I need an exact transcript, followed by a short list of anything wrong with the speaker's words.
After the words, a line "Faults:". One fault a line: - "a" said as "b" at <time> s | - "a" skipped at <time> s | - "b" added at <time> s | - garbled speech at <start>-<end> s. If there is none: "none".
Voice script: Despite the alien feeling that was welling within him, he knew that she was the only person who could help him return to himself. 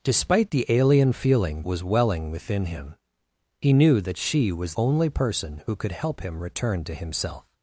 Despite the alien feeling was welling within him, he knew that she was only person who could help him return to himself.
Faults:
- "that" skipped at 1.6 s
- "the" skipped at 4.7 s